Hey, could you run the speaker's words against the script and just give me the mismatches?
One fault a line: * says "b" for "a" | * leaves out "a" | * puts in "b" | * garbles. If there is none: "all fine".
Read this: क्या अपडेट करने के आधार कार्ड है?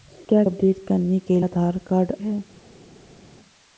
all fine